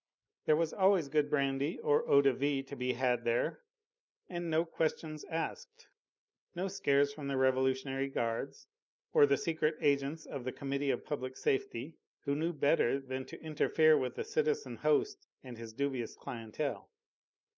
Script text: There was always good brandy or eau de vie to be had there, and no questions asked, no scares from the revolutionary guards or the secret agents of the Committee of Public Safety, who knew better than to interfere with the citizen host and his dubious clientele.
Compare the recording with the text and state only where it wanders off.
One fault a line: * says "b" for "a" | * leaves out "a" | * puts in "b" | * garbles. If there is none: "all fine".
all fine